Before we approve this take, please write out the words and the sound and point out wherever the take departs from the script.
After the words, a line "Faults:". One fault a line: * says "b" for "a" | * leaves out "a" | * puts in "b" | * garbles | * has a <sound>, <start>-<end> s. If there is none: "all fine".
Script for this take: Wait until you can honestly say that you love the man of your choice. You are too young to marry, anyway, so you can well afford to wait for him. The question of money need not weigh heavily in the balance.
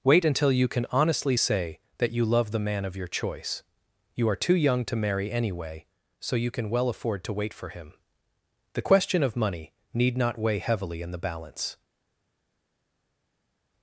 Wait until you can honestly say that you love the man of your choice. You are too young to marry, anyway, so you can well afford to wait for him. The question of money need not weigh heavily in the balance.
Faults:
all fine